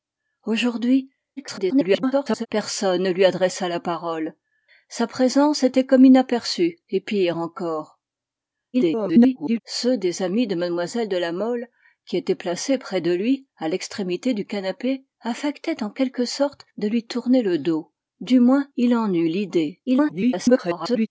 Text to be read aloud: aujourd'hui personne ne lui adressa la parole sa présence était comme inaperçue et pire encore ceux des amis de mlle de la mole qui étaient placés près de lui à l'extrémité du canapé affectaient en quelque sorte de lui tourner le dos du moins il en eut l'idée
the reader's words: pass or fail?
fail